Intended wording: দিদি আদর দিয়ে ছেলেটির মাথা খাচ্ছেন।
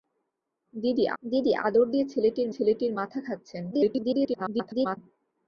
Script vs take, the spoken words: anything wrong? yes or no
yes